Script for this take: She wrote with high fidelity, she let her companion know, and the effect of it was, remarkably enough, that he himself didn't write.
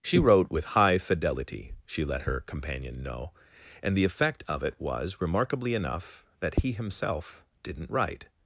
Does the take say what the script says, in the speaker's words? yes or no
yes